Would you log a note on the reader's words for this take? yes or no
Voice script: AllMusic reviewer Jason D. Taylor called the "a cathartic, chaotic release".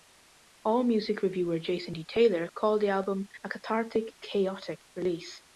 yes